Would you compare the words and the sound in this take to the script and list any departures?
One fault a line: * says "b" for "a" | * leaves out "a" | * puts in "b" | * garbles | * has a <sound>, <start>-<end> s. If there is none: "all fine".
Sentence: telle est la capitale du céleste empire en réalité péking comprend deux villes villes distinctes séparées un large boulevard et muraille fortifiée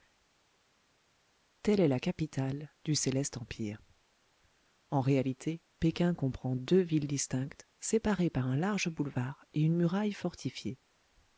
* leaves out "villes"
* puts in "par"
* puts in "une"